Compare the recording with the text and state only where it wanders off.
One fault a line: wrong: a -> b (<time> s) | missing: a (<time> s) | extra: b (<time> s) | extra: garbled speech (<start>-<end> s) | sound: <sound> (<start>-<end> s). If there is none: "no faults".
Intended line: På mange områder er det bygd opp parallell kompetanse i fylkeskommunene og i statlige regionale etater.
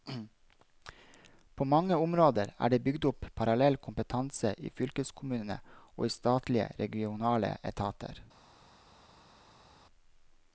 no faults